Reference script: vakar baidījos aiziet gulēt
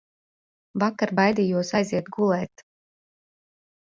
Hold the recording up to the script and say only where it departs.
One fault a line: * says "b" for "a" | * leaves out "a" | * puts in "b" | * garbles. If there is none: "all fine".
all fine